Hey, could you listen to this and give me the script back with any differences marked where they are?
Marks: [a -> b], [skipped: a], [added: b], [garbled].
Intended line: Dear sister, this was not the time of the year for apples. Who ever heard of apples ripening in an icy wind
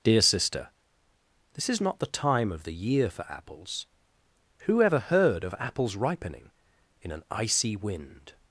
Dear sister, this [was -> is] not the time of the year for apples. Who ever heard of apples ripening in an icy wind